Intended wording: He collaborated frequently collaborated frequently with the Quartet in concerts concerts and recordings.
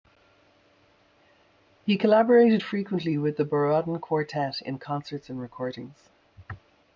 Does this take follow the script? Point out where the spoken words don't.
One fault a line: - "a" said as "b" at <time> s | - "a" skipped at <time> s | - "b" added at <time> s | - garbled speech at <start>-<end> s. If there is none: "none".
- "collaborated frequently" skipped at 3.2 s
- "Borodin" added at 3.4 s
- "concerts" skipped at 5.3 s